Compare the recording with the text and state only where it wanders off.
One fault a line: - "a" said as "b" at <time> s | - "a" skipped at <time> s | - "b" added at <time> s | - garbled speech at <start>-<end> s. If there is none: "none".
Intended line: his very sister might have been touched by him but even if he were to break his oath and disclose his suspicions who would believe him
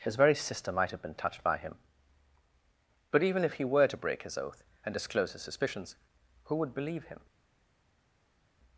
none